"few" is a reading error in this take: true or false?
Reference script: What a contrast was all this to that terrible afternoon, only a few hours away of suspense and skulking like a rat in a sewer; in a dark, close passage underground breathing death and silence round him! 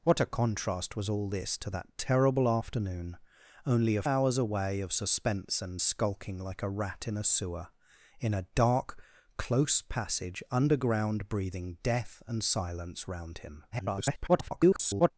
true